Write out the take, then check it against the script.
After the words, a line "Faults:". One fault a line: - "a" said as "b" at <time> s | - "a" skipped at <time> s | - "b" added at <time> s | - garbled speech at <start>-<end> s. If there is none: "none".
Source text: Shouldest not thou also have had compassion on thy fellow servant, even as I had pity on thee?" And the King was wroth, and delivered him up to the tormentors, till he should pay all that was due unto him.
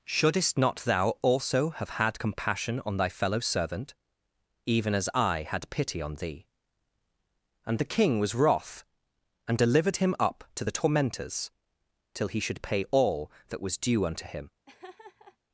Shouldest not thou also have had compassion on thy fellow servant, even as I had pity on thee?" And the King was wroth, and delivered him up to the tormentors, till he should pay all that was due unto him.
Faults:
none